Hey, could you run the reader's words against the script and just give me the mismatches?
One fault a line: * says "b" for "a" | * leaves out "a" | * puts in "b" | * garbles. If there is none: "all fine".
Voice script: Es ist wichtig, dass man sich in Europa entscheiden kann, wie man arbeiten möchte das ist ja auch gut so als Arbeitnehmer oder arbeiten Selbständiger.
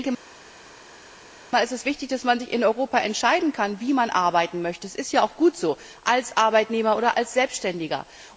* says "als" for "arbeiten"